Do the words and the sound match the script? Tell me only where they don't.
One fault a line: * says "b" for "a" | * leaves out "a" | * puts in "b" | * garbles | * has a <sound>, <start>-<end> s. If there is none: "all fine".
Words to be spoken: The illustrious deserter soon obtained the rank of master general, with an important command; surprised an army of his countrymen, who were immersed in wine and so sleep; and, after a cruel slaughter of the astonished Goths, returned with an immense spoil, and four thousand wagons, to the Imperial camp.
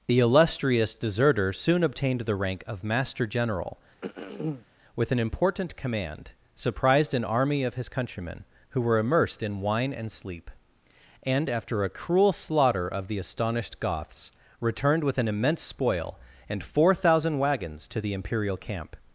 * has a throat clearing, 4.0-4.7 s
* leaves out "so"